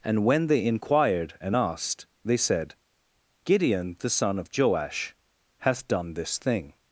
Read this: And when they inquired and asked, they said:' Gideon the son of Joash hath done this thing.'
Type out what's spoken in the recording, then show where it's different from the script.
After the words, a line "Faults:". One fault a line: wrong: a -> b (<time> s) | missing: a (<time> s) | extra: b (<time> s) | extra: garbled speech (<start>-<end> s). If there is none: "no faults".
And when they inquired and asked, they said:' Gideon the son of Joash hath done this thing.'
Faults:
no faults